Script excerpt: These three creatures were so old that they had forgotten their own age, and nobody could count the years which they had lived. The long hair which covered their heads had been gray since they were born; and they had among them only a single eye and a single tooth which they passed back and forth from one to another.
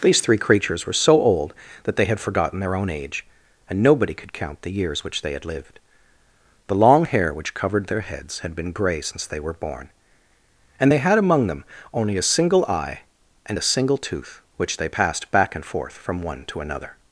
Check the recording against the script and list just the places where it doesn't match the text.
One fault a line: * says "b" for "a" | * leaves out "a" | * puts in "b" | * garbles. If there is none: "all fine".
all fine